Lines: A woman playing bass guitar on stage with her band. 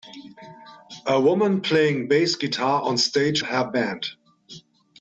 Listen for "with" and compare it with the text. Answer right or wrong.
wrong